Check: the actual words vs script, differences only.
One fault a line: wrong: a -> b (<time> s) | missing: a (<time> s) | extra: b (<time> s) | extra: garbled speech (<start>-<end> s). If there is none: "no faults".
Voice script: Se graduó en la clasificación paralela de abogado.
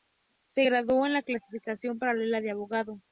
no faults